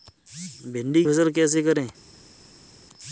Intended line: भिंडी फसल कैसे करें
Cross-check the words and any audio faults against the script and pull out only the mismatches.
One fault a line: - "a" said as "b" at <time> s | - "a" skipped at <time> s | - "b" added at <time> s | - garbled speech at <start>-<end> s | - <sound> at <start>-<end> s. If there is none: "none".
none